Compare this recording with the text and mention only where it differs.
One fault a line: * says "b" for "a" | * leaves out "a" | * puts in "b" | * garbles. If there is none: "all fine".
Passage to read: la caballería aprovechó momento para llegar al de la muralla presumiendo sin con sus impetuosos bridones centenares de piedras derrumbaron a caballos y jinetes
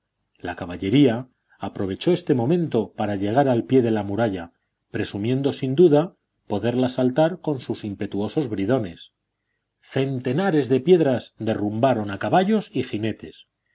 * puts in "este"
* puts in "pie"
* puts in "duda poderla saltar"